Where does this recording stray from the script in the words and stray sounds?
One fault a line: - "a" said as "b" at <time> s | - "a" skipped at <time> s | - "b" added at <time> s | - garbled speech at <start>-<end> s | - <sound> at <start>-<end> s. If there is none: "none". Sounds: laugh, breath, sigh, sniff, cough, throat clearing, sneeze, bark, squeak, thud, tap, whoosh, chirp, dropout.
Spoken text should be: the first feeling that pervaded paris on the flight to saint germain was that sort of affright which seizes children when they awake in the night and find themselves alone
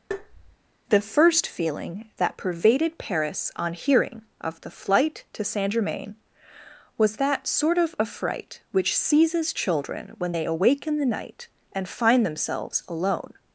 - tap at 0.1-0.6 s
- "hearing of" added at 3.7 s